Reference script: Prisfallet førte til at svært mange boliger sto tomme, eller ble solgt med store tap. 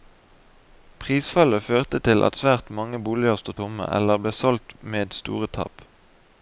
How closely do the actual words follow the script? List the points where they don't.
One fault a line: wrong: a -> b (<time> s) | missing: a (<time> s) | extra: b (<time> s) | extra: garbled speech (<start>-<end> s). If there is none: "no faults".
no faults